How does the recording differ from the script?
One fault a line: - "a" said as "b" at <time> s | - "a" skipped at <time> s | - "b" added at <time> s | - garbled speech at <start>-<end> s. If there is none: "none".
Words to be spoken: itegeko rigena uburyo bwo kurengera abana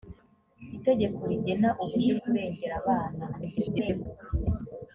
- "bwo" skipped at 2.1 s
- garbled speech at 3.3-4.1 s